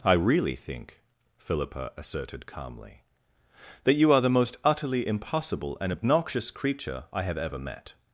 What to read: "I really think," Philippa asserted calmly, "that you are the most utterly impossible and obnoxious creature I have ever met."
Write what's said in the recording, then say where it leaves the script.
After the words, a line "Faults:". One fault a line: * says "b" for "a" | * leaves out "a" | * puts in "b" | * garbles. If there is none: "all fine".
"I really think," Philippa asserted calmly, "that you are the most utterly impossible and obnoxious creature I have ever met."
Faults:
all fine